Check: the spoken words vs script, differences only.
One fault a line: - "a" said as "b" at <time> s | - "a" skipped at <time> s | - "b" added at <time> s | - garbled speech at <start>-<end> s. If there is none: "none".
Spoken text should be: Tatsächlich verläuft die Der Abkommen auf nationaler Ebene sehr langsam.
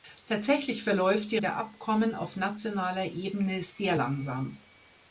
none